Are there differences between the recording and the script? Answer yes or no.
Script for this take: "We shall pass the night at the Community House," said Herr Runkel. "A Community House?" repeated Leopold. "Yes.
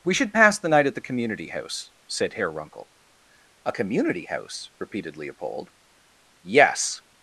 yes